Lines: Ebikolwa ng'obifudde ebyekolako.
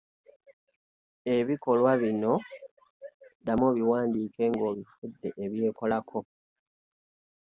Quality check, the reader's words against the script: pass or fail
fail